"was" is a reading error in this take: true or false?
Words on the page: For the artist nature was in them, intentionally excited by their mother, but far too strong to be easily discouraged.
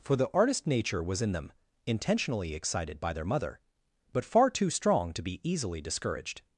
false